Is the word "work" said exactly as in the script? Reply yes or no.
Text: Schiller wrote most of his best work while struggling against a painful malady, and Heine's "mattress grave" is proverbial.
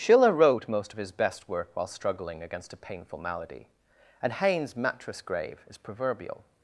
yes